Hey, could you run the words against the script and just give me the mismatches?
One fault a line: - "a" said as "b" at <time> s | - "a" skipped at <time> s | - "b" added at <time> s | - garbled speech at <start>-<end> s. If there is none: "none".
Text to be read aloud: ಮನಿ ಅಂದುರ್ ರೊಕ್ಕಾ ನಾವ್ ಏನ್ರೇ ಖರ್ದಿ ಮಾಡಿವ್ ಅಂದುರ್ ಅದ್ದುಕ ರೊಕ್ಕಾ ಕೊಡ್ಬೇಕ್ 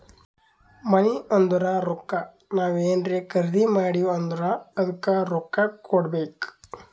none